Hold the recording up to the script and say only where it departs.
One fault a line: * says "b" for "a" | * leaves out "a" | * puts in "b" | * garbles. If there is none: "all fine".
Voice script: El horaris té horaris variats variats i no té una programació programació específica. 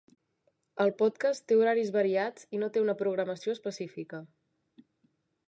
* says "podcast" for "horaris"
* leaves out "variats"
* leaves out "programació"